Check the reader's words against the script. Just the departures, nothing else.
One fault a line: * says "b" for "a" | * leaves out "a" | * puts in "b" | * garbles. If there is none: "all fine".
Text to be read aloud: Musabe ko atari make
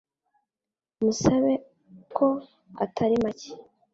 all fine